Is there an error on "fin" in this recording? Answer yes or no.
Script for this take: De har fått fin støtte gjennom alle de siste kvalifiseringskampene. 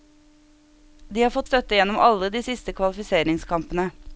yes